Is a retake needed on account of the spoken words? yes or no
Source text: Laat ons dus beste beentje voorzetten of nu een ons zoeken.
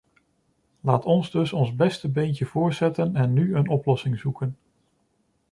yes